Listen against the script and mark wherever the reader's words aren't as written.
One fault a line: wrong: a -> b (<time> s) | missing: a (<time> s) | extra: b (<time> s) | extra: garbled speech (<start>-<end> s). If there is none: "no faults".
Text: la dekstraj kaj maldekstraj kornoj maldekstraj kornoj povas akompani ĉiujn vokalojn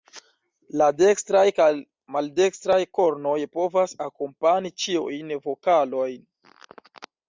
missing: maldekstraj kornoj (3.4 s)